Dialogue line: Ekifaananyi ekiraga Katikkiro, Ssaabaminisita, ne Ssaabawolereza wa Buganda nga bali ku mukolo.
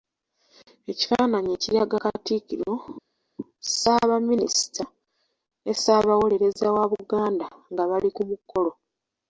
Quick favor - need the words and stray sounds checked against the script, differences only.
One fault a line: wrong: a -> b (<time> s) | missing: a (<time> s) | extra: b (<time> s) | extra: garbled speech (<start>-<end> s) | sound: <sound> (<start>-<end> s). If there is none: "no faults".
no faults